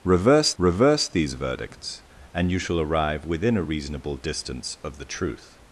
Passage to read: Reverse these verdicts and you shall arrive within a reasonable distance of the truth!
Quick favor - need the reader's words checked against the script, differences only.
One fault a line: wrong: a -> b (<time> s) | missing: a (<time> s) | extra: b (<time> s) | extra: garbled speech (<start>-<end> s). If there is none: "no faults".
extra: reverse (0.6 s)